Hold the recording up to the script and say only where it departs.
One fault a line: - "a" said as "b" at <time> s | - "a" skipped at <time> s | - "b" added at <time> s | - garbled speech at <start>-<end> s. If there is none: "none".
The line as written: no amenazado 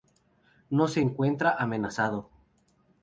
- "se encuentra" added at 0.9 s